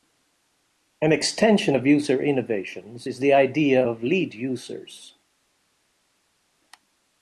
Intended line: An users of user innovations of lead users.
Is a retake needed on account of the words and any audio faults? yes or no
yes